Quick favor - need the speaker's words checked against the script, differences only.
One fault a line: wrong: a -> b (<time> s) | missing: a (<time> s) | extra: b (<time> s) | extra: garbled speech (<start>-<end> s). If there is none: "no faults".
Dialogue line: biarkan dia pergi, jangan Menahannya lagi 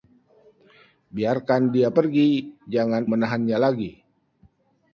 no faults